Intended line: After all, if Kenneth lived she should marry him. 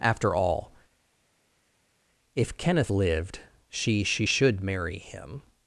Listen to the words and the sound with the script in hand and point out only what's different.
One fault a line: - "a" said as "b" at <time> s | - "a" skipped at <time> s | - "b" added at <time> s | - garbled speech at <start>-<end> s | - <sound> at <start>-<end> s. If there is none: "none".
- "she" added at 4.0 s